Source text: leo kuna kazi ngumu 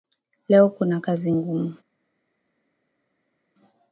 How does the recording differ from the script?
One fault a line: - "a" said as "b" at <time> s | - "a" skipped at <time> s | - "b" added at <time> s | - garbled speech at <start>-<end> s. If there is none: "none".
none